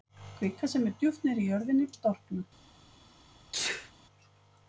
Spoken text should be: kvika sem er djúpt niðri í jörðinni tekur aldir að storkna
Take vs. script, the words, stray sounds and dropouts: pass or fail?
fail